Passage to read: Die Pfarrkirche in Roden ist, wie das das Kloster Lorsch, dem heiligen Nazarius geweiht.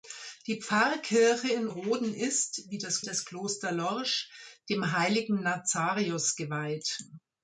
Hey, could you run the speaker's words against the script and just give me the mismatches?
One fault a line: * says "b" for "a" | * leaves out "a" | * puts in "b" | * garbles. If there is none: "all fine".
all fine